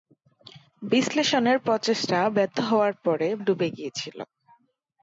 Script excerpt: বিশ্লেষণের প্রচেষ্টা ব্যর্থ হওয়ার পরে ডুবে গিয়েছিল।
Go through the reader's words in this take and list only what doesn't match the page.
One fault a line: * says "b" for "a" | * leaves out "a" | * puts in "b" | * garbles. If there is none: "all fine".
all fine